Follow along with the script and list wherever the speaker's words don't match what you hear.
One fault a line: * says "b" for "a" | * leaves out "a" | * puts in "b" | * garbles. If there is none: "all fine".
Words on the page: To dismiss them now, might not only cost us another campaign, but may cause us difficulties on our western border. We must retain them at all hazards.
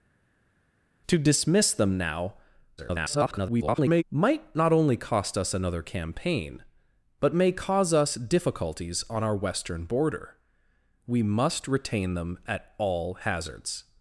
* garbles